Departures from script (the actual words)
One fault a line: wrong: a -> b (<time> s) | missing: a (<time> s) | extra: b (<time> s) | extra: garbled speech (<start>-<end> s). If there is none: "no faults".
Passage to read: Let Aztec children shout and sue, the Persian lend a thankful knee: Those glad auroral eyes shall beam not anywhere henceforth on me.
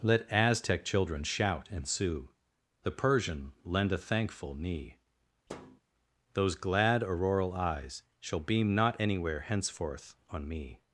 no faults